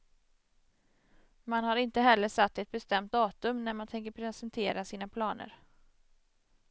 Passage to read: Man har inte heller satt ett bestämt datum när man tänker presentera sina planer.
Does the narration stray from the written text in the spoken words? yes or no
no